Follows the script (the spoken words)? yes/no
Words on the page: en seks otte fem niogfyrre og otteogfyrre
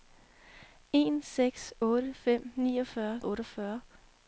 yes